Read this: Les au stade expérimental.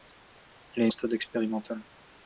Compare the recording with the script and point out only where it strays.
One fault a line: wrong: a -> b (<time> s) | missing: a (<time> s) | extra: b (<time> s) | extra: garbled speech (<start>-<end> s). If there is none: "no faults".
no faults